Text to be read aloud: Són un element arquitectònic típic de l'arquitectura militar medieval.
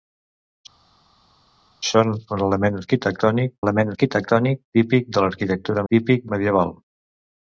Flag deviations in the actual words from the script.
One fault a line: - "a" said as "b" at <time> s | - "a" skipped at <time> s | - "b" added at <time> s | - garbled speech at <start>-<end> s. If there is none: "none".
- "element arquitectònic" added at 3.6 s
- "militar" said as "típic" at 5.9 s